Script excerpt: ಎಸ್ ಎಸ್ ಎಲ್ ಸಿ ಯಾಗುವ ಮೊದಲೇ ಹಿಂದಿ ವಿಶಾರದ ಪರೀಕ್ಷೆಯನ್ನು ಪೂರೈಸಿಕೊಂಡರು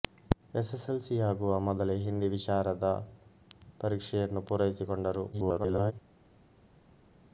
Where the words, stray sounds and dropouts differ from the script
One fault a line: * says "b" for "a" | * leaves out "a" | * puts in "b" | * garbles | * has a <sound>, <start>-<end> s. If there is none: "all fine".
* garbles